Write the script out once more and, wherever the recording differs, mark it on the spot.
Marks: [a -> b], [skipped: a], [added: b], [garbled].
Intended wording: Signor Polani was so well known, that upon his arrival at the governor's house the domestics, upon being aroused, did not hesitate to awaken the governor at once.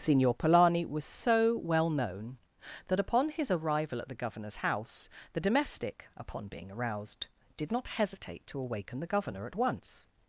Signor Polani was so well known, that upon his arrival at the governor's house the [domestics, -> domestic] upon being aroused, did not hesitate to awaken the governor at once.